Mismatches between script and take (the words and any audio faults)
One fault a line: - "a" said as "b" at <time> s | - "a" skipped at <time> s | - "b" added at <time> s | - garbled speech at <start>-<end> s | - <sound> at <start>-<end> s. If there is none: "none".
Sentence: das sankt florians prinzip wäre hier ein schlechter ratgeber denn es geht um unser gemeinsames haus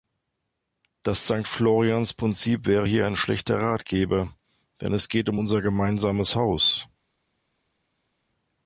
none